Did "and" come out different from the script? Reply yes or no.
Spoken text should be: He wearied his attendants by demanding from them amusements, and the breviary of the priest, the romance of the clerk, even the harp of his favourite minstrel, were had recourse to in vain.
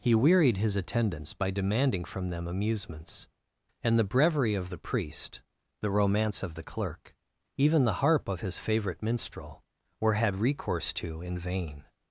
no